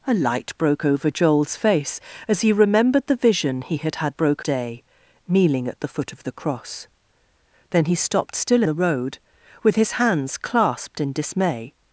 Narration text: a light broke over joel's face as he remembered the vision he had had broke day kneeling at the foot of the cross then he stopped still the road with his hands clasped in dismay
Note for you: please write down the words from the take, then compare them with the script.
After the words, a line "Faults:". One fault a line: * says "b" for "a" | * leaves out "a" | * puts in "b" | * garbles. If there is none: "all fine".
a light broke over joel's face as he remembered the vision he had had broke day kneeling at the foot of the cross then he stopped still the road with his hands clasped in dismay
Faults:
all fine